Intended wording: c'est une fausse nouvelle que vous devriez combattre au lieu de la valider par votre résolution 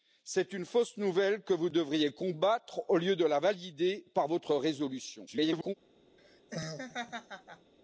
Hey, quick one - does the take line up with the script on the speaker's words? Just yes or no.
no